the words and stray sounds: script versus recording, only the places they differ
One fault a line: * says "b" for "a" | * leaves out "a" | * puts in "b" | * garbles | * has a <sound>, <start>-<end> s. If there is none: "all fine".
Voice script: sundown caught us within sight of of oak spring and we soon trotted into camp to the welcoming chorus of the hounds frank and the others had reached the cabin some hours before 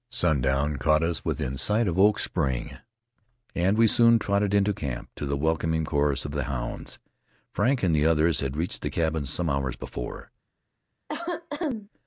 * leaves out "of"
* has a cough, 11.1-11.9 s